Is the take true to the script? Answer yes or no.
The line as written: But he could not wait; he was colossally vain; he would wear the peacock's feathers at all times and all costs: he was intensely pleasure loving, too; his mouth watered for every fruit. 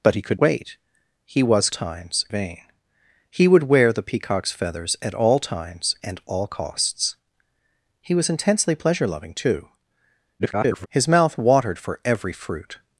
no